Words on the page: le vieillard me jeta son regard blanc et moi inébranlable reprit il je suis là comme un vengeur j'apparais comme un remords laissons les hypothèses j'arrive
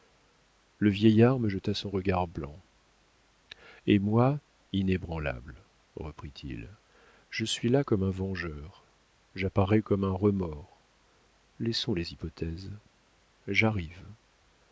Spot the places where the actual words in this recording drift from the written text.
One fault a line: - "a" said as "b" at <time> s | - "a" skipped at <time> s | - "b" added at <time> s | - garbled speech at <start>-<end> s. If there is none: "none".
none